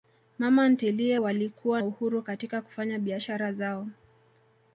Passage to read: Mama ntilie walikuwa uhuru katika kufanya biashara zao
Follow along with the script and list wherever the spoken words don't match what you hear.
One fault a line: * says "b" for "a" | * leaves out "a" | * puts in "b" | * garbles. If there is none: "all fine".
all fine